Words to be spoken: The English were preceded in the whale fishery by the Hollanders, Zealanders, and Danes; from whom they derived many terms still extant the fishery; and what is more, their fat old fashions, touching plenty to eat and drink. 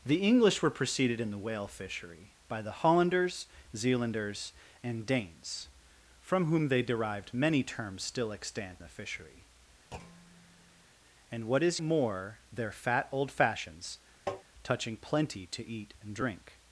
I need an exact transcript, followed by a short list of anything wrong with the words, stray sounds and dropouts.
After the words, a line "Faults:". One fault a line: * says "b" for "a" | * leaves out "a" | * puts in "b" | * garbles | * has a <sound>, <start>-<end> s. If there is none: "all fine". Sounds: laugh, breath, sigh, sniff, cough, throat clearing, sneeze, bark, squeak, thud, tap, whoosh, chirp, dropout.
The English were preceded in the whale fishery by the Hollanders, Zealanders, and Danes; from whom they derived many terms still extant the fishery; and what is more, their fat old fashions, touching plenty to eat and drink.
Faults:
* has a thud, 9.9-10.9 s
* has a tap, 14.3-14.4 s